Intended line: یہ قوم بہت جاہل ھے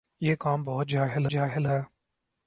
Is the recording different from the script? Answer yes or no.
yes